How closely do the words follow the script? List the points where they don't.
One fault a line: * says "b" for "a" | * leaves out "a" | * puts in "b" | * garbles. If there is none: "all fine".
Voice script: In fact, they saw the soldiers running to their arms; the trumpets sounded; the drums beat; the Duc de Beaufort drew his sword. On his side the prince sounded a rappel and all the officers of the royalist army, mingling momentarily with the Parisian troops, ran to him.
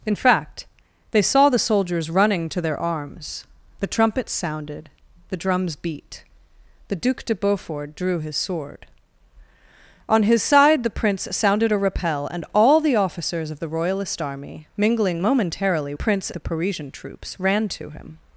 * says "prince" for "with"